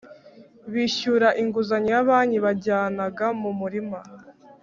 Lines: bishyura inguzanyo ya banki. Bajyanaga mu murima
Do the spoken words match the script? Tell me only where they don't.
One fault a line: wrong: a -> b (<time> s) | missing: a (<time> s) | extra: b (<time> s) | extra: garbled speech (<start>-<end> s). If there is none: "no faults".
no faults